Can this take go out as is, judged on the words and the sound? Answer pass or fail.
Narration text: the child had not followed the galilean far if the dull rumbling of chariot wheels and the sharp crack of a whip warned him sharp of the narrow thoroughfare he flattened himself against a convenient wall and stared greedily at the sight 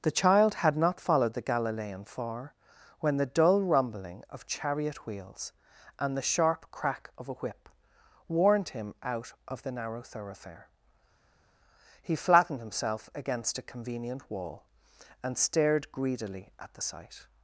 fail